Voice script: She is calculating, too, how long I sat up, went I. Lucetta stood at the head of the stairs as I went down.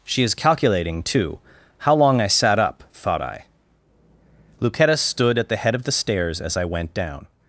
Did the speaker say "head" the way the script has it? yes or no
yes